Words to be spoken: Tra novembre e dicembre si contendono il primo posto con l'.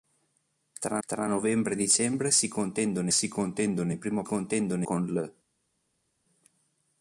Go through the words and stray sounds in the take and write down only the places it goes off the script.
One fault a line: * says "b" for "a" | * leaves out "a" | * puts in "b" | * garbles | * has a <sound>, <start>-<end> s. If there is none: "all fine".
* puts in "tra"
* puts in "si contendono"
* says "contendono" for "posto"